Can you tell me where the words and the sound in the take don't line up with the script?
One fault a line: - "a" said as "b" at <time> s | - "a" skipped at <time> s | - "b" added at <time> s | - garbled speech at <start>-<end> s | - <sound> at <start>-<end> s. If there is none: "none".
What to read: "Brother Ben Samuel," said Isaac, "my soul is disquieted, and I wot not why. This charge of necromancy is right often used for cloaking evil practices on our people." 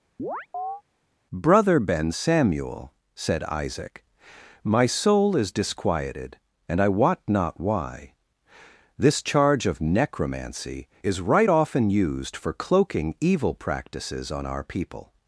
- chirp at 0.2-0.8 s